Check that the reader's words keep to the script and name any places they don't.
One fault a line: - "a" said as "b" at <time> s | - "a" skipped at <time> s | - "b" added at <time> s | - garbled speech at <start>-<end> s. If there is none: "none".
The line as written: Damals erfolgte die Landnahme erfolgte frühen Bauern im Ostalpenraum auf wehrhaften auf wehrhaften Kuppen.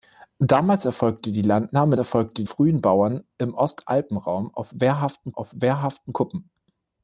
none